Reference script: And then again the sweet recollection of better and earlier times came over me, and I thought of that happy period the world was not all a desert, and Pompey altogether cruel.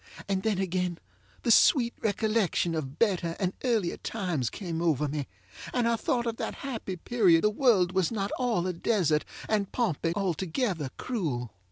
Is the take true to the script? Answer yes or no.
yes